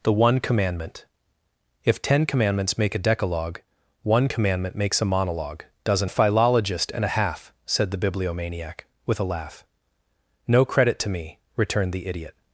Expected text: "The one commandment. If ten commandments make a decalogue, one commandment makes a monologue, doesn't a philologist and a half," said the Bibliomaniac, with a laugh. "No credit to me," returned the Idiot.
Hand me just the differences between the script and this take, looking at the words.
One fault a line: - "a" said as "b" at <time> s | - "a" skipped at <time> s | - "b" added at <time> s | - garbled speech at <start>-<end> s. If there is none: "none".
none